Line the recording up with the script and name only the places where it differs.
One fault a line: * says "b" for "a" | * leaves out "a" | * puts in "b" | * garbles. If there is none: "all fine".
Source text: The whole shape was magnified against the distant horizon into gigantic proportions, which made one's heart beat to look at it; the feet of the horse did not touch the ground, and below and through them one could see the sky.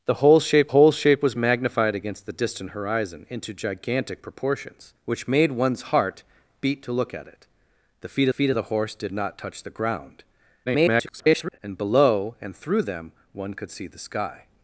* puts in "whole shape"
* puts in "feet"
* garbles